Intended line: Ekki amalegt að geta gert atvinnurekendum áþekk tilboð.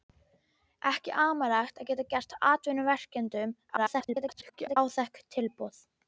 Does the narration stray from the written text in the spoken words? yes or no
yes